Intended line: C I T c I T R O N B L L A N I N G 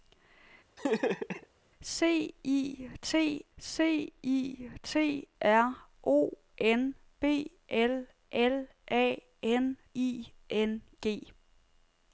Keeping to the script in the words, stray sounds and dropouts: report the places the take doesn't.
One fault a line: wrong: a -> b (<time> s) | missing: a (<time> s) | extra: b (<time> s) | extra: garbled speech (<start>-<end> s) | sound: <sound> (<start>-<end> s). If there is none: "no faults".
sound: laugh (0.8-1.5 s)